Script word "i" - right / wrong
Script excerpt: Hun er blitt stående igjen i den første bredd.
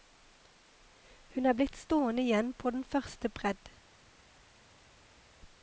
wrong